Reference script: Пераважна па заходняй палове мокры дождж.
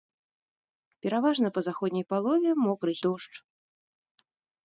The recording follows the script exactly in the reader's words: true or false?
true